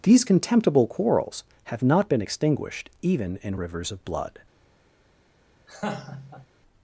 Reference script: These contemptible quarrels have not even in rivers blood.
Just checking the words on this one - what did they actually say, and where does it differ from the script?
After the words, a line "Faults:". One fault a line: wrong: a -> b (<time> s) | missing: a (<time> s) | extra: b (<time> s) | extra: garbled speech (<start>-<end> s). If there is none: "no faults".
These contemptible quarrels have not been extinguished even in rivers of blood.
Faults:
extra: been extinguished (2.1 s)
extra: of (3.9 s)